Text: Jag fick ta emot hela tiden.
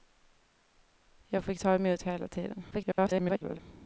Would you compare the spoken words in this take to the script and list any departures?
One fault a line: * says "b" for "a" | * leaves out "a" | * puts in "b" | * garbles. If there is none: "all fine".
* garbles